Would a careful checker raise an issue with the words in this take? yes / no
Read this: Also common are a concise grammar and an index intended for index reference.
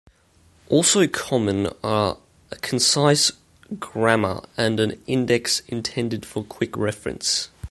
yes